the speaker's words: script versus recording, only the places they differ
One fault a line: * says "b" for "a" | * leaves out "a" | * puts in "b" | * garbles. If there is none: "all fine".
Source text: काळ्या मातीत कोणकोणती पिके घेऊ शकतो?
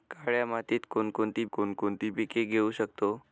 * puts in "कोणकोणती"